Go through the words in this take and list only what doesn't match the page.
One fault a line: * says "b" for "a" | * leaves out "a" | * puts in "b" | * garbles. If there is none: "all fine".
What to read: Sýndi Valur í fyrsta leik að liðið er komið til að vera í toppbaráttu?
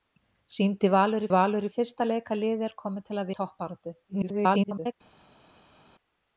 * puts in "Valur"
* leaves out "vera"
* garbles